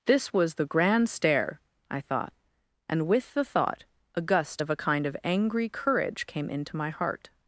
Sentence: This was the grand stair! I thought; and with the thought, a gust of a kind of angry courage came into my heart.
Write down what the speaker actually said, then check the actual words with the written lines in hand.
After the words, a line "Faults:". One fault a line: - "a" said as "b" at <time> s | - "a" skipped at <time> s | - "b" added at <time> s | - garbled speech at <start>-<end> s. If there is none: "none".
This was the grand stair! I thought; and with the thought, a gust of a kind of angry courage came into my heart.
Faults:
none